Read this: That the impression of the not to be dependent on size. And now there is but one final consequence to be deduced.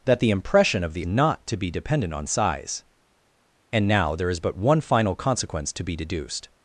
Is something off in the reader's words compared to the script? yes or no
no